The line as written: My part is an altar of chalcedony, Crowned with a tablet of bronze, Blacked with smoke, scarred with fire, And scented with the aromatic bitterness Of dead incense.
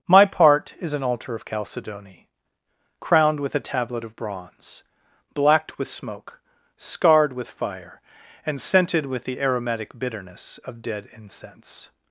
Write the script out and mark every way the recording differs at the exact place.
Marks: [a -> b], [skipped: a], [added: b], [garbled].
My part is an altar of chalcedony, Crowned with a tablet of bronze, Blacked with smoke, scarred with fire, And scented with the aromatic bitterness Of dead incense.